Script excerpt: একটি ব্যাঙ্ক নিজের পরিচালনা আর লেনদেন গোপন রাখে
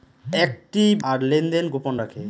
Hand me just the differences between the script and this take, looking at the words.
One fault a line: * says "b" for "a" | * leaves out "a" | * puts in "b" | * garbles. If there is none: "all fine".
* leaves out "ব্যাঙ্ক নিজের পরিচালনা"